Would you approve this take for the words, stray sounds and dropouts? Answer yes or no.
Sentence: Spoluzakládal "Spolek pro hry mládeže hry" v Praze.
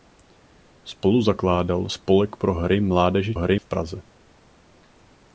yes